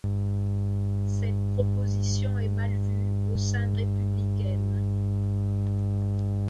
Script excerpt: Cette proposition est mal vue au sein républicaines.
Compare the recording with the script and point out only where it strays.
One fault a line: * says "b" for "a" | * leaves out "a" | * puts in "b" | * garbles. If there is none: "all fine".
all fine